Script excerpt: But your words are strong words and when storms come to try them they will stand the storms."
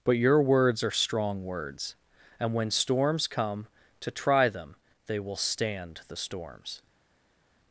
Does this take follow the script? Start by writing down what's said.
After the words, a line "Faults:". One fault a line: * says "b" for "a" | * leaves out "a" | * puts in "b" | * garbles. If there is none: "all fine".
But your words are strong words and when storms come to try them they will stand the storms."
Faults:
all fine